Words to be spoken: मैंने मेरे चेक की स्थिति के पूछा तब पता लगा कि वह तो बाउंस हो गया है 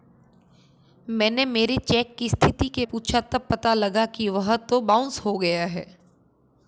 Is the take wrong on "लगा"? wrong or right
right